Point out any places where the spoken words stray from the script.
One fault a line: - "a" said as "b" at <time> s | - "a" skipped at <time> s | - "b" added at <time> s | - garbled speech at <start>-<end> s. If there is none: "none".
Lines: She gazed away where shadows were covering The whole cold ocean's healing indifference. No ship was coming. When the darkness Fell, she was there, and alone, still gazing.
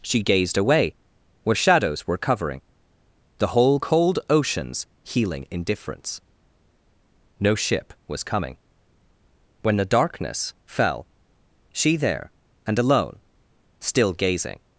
- "was" skipped at 12.0 s